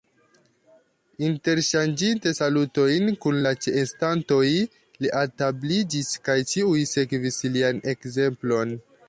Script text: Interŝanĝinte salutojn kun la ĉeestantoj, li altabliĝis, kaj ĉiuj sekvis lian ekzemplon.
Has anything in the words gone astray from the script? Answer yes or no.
no